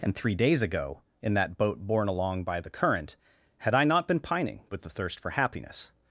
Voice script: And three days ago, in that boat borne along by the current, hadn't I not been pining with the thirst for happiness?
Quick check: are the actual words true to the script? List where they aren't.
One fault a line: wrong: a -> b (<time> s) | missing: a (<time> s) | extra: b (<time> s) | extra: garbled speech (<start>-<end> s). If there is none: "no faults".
wrong: hadn't -> had (3.6 s)